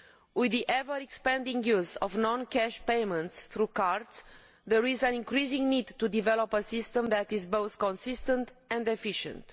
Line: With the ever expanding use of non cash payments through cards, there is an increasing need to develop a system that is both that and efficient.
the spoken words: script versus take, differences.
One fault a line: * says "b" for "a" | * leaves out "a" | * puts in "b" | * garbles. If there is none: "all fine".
* says "consistent" for "that"